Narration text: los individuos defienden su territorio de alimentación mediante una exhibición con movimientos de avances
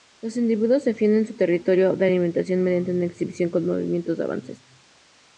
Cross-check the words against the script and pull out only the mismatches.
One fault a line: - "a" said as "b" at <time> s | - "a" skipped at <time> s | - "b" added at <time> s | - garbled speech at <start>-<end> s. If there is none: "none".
none